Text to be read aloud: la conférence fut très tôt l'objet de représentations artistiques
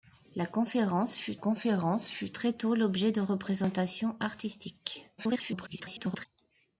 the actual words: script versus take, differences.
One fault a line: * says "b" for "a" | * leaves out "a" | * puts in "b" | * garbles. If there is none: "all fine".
* puts in "conférence fut"
* garbles